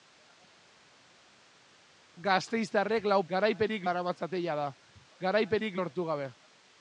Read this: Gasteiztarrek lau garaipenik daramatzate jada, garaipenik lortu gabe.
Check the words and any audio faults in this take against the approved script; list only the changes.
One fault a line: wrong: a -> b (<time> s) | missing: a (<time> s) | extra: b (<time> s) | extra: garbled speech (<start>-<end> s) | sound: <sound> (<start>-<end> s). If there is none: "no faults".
no faults